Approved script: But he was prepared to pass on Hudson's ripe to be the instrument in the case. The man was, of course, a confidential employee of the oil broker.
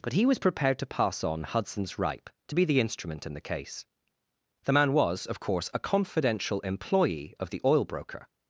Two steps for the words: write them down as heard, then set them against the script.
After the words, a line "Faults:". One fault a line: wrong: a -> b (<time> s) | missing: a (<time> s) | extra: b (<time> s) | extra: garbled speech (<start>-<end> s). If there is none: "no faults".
But he was prepared to pass on Hudson's ripe to be the instrument in the case. The man was, of course, a confidential employee of the oil broker.
Faults:
no faults